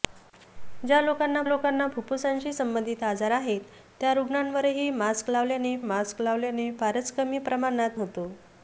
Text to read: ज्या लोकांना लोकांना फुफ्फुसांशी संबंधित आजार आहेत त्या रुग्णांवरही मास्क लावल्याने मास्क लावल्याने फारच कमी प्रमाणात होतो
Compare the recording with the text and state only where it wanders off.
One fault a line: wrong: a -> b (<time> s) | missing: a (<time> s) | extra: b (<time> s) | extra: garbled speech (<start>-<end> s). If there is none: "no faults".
no faults